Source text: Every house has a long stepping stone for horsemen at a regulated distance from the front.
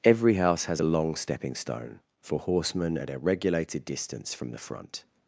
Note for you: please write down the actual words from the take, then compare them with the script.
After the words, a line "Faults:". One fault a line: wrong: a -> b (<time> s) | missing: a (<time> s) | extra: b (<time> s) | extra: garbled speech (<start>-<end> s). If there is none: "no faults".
Every house has a long stepping stone for horsemen at a regulated distance from the front.
Faults:
no faults